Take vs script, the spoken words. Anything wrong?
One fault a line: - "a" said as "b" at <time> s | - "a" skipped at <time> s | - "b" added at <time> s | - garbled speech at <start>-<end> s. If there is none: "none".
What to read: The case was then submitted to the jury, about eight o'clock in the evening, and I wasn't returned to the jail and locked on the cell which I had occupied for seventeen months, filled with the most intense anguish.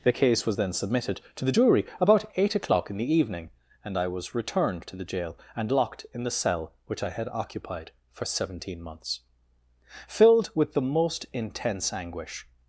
- "wasn't" said as "was" at 4.1 s
- "on" said as "in" at 6.1 s